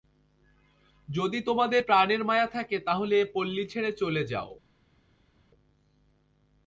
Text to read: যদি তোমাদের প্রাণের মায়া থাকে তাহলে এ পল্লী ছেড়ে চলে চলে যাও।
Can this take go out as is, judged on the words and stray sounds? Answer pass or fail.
fail